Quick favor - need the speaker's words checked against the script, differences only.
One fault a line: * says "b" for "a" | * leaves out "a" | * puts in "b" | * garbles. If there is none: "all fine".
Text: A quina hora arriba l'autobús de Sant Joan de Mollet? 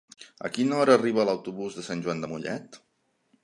all fine